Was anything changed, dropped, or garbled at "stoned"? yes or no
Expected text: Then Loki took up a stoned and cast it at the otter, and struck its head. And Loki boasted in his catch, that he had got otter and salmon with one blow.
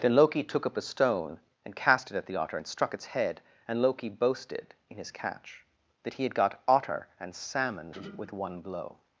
yes